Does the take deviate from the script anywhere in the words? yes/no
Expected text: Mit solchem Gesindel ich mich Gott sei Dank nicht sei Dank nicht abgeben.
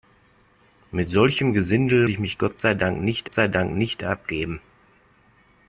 no